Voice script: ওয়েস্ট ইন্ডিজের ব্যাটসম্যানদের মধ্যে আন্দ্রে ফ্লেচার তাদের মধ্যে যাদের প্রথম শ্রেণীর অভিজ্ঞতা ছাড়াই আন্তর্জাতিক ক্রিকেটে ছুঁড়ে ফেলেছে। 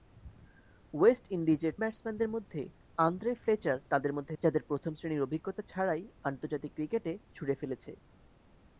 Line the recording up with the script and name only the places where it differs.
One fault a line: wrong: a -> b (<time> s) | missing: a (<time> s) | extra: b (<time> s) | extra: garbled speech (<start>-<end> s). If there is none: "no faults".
no faults